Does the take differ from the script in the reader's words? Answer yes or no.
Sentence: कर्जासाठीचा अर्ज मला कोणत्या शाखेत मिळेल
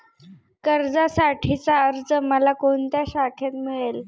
no